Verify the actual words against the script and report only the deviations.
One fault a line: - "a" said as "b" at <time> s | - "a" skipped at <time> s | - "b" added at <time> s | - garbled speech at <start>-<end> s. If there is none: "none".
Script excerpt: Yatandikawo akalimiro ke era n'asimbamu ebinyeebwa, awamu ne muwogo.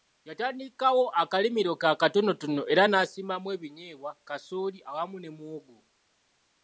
- "akatonotono" added at 1.9 s
- "kasooli" added at 4.3 s